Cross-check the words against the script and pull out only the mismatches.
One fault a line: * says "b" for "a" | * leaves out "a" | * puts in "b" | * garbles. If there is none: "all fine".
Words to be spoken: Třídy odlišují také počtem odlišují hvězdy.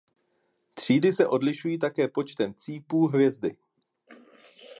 * puts in "se"
* says "cípů" for "odlišují"